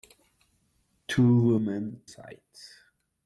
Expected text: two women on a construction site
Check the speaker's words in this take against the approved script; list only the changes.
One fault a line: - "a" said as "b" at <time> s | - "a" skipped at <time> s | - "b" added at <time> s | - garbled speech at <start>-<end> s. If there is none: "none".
- "on a construction" skipped at 2.0 s